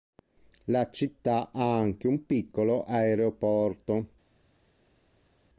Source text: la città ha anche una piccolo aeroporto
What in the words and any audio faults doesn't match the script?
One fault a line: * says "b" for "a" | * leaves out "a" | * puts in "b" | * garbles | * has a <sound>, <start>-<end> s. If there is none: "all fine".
* says "un" for "una"